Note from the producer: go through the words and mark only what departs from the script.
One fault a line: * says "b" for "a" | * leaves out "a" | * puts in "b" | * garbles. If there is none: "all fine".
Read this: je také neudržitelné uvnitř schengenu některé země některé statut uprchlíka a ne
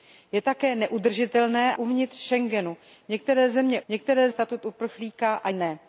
all fine